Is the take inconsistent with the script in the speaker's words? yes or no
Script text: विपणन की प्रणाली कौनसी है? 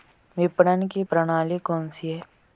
no